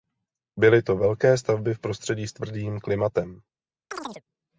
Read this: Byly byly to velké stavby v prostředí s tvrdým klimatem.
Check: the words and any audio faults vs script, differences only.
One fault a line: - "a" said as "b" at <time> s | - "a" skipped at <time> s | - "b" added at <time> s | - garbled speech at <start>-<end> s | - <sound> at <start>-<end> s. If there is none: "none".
- "byly" skipped at 0.8 s
- chirp at 3.9-4.2 s